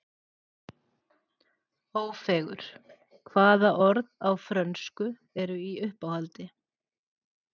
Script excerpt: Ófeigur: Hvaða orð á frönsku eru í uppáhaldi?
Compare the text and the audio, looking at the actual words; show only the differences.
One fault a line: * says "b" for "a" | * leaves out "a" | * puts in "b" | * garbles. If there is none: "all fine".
all fine